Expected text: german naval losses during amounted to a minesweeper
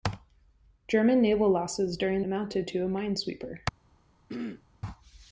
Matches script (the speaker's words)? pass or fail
pass